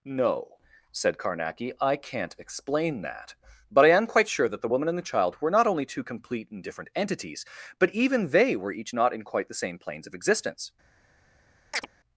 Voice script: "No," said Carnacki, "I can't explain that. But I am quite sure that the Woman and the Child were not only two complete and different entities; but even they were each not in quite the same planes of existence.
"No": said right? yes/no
yes